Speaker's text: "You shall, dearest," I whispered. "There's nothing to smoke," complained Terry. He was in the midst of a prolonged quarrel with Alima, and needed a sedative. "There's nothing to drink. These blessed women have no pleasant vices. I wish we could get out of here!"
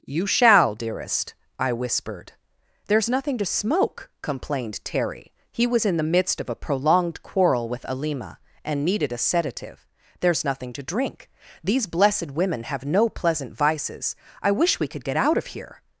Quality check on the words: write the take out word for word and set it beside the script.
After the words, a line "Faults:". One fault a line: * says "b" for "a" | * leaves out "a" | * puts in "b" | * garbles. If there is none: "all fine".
"You shall, dearest," I whispered. "There's nothing to smoke," complained Terry. He was in the midst of a prolonged quarrel with Alima, and needed a sedative. "There's nothing to drink. These blessed women have no pleasant vices. I wish we could get out of here!"
Faults:
all fine